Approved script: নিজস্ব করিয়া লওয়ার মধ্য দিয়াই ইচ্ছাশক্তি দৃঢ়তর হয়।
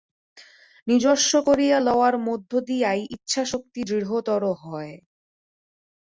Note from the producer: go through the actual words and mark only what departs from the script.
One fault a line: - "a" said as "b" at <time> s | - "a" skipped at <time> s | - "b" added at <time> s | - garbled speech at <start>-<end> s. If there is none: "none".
none